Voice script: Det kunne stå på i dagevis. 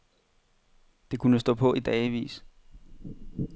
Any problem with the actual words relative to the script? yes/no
no